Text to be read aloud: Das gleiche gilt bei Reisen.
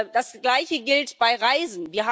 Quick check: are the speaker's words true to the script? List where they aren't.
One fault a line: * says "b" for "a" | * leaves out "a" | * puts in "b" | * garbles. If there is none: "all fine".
all fine